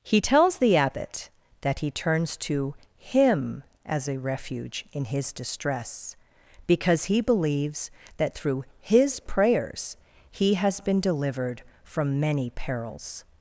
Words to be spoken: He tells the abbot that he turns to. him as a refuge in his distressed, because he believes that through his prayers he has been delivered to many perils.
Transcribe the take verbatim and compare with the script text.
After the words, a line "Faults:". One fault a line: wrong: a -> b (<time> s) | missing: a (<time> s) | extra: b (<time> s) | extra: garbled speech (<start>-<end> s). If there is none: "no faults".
He tells the abbot that he turns to. him as a refuge in his distress, because he believes that through his prayers he has been delivered from many perils.
Faults:
wrong: distressed -> distress (5.3 s)
wrong: to -> from (11.8 s)